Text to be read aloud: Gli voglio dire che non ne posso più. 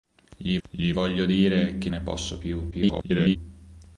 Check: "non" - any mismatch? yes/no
yes